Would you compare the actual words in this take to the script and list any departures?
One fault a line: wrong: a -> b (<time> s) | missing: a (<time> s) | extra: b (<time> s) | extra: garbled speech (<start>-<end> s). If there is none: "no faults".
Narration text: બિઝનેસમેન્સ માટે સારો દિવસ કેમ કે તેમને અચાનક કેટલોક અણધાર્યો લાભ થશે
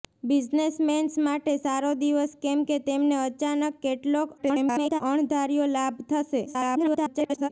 extra: garbled speech (4.4-5.0 s)
extra: garbled speech (6.5-7.5 s)